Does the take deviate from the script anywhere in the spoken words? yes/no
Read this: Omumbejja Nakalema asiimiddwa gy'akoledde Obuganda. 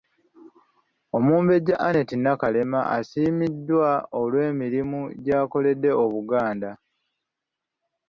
yes